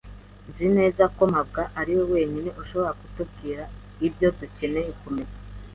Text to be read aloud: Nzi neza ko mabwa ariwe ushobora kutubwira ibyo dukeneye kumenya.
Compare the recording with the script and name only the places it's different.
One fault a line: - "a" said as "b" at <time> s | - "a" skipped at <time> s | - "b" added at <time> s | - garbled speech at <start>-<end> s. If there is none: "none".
- "wenyine" added at 2.1 s